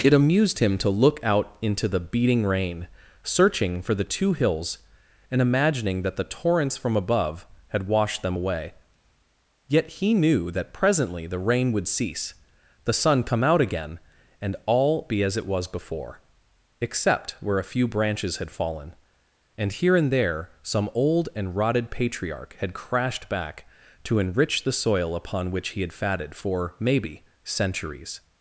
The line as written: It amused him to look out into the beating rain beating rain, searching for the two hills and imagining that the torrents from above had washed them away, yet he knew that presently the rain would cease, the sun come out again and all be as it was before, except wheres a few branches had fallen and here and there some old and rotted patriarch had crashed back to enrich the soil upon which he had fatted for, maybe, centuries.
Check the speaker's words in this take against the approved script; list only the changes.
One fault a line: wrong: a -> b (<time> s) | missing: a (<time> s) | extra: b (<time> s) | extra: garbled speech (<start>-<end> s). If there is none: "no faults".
missing: beating rain (2.9 s)
wrong: wheres -> where (17.4 s)